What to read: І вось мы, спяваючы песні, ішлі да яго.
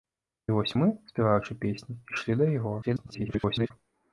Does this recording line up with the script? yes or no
no